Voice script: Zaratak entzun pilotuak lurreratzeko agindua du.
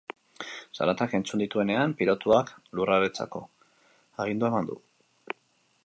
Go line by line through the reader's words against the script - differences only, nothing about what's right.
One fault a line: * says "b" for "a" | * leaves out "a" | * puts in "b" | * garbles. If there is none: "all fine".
* puts in "dituenean"
* puts in "eman"